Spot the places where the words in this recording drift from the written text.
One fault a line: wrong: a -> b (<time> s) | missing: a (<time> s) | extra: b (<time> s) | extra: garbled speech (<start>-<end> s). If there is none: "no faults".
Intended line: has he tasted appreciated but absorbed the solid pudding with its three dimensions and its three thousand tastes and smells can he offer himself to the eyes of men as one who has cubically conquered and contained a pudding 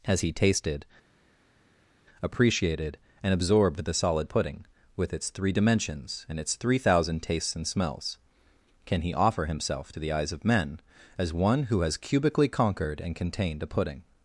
wrong: but -> and (3.2 s)